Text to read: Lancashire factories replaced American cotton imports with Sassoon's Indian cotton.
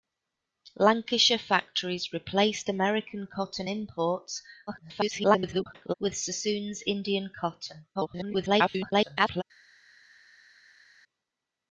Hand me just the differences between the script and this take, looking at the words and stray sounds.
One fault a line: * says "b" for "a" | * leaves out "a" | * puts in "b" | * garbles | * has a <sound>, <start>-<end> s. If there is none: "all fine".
* garbles
* garbles